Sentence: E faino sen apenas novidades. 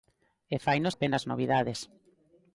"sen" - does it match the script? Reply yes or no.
no